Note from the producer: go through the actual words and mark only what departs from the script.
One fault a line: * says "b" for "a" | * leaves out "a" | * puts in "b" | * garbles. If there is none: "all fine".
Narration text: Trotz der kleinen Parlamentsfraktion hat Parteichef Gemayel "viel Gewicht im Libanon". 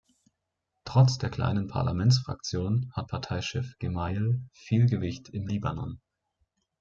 all fine